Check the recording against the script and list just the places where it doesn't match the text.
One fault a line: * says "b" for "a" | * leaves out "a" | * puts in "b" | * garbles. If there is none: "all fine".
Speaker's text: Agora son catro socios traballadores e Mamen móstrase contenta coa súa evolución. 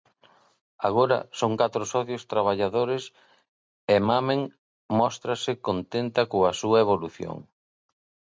all fine